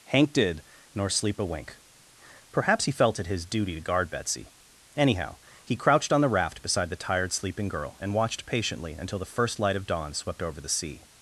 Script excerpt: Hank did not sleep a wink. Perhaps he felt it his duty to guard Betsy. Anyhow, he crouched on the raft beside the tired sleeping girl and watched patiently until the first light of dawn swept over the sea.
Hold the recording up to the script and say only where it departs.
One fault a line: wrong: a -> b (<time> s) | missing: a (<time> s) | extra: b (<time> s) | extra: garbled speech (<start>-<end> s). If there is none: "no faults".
wrong: not -> nor (0.9 s)